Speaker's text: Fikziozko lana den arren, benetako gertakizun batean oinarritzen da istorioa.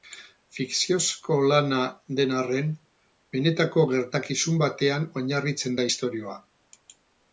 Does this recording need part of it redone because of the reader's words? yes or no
no